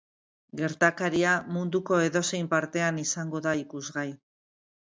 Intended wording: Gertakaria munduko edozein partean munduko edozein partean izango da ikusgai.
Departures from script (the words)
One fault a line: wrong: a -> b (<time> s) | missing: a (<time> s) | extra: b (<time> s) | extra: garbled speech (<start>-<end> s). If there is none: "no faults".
missing: munduko edozein partean (3.0 s)